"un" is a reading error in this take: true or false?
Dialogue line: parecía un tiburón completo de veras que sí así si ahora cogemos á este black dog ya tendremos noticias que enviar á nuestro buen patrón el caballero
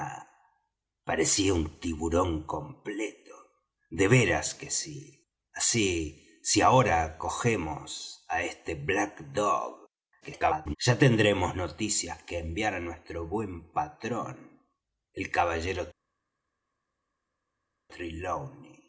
false